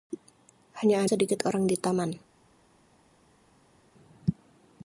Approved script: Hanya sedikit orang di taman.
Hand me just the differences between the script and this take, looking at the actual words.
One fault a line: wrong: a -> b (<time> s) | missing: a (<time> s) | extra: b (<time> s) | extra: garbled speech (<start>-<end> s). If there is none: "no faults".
no faults